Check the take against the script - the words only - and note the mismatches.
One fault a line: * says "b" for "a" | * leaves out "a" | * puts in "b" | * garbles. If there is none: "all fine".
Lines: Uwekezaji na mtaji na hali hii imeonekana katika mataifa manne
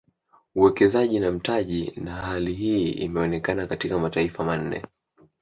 all fine